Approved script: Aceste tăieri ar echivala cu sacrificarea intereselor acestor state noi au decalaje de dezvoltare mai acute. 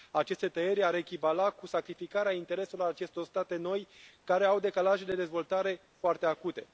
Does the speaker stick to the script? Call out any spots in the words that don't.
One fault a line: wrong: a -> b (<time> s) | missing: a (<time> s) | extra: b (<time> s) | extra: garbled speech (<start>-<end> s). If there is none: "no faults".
extra: care (4.2 s)
wrong: mai -> foarte (6.0 s)